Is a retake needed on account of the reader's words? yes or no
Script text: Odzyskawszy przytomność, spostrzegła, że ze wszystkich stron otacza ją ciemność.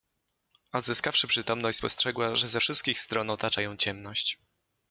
no